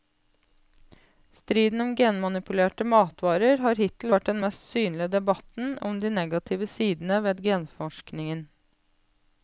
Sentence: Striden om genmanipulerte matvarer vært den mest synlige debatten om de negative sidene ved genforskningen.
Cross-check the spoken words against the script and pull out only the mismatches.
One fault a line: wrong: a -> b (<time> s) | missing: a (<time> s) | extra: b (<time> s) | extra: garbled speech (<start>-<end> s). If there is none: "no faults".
extra: har hittil (3.6 s)